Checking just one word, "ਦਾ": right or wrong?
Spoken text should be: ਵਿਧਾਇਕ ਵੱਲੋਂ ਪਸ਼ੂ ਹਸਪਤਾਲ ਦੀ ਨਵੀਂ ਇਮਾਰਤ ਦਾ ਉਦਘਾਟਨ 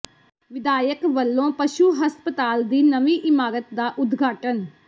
right